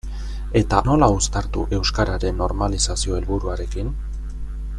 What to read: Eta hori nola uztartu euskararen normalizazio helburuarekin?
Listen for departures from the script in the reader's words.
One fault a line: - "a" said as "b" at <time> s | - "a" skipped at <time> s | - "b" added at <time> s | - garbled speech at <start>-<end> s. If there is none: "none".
- "hori" skipped at 0.8 s